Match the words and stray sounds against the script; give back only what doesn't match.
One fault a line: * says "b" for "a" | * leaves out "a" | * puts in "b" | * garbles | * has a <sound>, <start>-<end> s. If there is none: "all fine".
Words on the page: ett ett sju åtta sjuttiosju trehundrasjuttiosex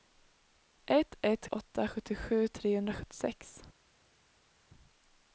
* leaves out "sju"